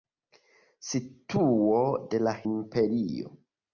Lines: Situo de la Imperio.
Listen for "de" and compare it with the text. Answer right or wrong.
right